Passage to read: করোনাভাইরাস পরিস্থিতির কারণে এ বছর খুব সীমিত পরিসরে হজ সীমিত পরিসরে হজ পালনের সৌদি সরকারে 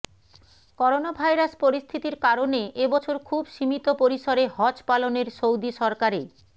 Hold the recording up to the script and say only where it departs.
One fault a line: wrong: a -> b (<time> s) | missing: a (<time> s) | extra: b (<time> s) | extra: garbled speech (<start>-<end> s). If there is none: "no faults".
missing: সীমিত পরিসরে হজ (4.8 s)